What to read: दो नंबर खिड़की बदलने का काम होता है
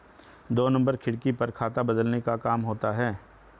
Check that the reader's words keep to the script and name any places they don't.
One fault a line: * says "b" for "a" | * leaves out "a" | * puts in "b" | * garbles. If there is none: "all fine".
* puts in "पर खाता"